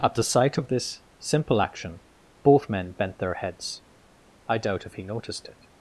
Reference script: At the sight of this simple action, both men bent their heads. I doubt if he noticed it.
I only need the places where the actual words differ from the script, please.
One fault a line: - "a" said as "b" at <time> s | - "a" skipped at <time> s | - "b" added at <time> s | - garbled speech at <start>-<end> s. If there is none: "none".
none